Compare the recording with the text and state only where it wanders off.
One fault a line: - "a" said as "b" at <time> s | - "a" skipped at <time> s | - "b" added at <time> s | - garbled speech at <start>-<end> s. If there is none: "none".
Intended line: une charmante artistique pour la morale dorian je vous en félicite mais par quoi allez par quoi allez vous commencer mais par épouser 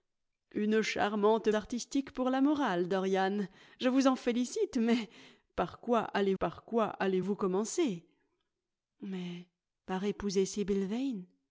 none